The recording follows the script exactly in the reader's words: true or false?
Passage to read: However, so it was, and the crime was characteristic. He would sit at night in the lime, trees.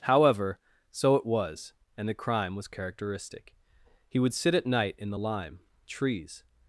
true